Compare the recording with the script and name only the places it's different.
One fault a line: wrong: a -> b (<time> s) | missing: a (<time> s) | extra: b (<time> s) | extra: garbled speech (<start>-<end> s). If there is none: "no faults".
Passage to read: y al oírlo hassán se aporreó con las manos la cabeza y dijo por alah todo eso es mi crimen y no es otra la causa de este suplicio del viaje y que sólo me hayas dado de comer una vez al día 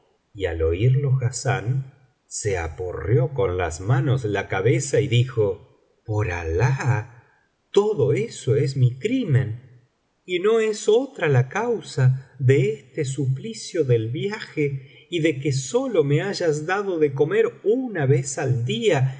extra: de (15.2 s)